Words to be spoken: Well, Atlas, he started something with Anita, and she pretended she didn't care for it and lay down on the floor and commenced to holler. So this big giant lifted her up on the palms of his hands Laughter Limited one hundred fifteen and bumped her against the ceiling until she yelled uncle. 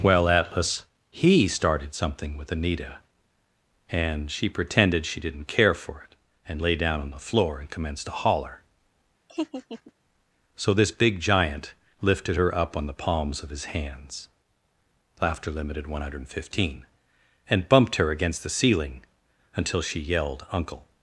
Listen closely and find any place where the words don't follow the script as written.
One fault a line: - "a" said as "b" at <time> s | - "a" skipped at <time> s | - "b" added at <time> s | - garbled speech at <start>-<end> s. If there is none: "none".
none